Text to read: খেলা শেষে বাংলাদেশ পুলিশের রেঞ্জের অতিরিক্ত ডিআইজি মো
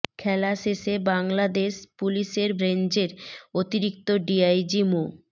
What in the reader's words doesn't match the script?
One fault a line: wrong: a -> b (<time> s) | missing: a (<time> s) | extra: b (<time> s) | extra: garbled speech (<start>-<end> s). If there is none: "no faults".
no faults